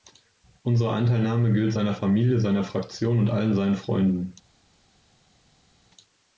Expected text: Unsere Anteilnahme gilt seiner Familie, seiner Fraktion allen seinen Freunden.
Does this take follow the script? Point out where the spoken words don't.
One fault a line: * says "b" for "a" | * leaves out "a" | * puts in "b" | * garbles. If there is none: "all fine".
* puts in "und"